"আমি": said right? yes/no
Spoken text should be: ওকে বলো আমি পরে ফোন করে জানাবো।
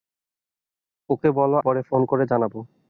no